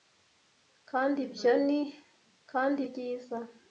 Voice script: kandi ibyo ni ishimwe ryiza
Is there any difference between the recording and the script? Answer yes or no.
yes